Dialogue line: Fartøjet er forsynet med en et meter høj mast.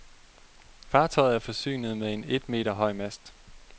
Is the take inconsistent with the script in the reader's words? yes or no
no